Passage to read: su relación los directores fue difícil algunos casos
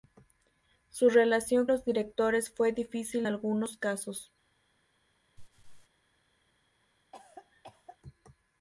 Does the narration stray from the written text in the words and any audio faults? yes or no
yes